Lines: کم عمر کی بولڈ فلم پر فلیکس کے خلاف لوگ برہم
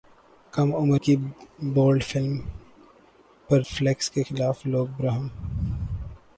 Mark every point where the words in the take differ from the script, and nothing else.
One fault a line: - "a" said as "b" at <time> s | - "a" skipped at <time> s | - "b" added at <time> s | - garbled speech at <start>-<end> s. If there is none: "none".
none